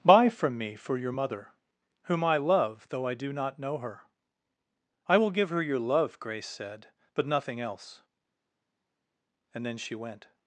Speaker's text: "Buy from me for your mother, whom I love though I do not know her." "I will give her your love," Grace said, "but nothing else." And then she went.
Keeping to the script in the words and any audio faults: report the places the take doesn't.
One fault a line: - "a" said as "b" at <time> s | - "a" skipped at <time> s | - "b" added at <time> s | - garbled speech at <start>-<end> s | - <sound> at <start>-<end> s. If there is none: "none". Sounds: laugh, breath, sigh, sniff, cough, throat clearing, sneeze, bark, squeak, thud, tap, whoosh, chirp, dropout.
none